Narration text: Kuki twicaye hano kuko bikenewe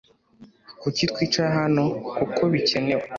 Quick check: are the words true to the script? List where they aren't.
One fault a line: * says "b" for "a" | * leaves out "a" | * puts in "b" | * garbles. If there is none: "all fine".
all fine